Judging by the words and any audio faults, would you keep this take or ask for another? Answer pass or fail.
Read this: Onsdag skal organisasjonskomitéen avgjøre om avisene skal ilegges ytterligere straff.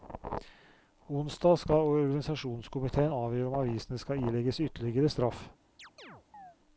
fail